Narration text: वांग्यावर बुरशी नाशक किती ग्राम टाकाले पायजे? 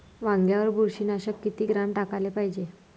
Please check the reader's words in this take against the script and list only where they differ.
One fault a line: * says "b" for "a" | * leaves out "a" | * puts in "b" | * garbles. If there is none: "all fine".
all fine